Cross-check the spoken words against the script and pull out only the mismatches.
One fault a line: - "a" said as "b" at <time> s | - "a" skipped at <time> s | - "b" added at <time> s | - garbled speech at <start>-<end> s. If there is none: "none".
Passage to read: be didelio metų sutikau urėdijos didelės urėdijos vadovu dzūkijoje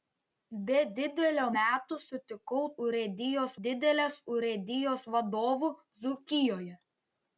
none